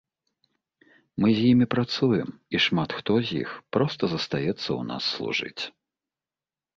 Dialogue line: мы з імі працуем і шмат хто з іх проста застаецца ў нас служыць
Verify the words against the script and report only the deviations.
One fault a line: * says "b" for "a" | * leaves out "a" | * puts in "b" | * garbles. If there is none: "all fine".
all fine